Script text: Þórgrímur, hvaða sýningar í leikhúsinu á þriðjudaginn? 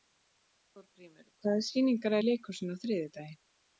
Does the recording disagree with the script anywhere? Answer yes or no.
no